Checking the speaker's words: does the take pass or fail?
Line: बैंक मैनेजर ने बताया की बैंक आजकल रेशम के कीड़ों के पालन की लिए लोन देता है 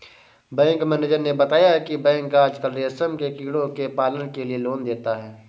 fail